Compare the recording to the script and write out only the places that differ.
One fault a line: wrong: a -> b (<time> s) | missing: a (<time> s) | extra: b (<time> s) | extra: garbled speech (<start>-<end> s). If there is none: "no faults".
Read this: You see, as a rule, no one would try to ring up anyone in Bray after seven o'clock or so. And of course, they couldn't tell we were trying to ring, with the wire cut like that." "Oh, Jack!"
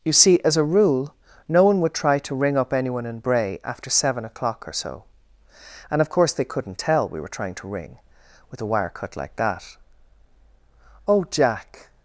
no faults